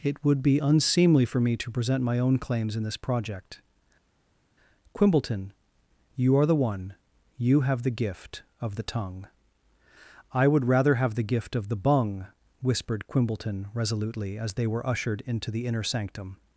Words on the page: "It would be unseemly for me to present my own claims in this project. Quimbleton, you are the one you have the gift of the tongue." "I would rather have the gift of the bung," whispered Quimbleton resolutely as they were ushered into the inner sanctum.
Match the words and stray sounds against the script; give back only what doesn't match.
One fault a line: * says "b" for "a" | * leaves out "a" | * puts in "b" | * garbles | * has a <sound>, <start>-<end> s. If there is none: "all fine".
all fine